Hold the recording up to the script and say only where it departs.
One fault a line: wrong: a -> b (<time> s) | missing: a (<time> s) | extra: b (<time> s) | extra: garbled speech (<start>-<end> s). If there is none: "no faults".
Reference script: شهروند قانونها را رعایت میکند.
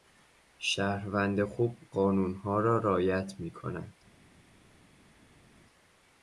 extra: خوب (1.4 s)